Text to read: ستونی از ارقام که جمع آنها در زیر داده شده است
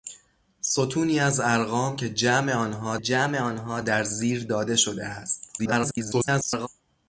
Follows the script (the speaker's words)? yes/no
no